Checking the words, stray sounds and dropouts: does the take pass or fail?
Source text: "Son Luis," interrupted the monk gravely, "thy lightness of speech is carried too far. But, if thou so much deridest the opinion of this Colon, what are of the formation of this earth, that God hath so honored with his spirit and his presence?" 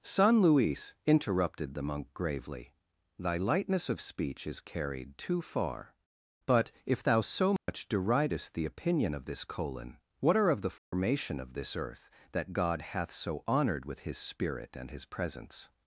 fail